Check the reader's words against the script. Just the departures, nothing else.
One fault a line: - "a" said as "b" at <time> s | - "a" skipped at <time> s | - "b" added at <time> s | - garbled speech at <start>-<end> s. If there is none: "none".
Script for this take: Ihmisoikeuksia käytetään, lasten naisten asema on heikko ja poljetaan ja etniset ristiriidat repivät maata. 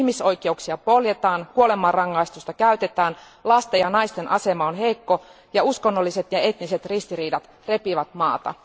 - "poljetaan kuolemanrangaistusta" added at 0.8 s
- "ja" added at 3.8 s
- "poljetaan" said as "uskonnolliset" at 5.6 s